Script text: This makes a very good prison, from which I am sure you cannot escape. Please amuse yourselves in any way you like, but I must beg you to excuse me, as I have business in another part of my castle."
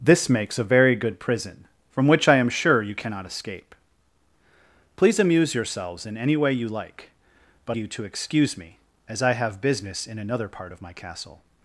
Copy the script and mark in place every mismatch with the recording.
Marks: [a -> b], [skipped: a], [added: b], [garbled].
This makes a very good prison, from which I am sure you cannot escape. Please amuse yourselves in any way you like, but [skipped: I must beg] you to excuse me, as I have business in another part of my castle."